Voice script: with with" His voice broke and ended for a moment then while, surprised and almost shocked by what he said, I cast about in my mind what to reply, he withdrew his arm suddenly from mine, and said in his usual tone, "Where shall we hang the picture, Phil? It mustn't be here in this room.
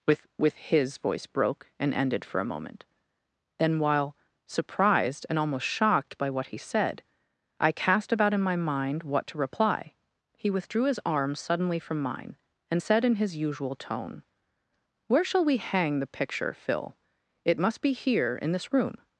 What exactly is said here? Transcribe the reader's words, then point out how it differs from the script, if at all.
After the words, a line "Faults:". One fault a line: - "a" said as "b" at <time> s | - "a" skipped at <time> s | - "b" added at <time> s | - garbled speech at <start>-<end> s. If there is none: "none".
with with" His voice broke and ended for a moment then while, surprised and almost shocked by what he said, I cast about in my mind what to reply, he withdrew his arm suddenly from mine, and said in his usual tone, "Where shall we hang the picture, Phil? It must be here in this room.
Faults:
- "mustn't" said as "must" at 17.6 s